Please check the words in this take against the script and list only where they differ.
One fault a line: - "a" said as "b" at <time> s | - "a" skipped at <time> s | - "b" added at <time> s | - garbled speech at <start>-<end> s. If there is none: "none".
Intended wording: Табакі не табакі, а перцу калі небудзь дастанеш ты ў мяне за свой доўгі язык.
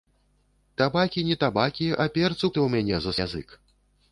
- "калі небудзь дастанеш" skipped at 2.5 s
- "свой доўгі" skipped at 3.1 s